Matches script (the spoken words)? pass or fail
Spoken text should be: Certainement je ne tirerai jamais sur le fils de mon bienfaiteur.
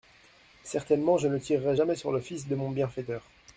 pass